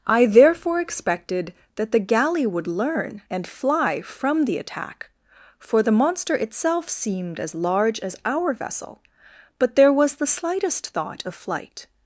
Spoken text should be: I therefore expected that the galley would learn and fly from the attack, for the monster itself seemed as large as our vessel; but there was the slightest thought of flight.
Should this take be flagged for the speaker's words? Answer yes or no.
no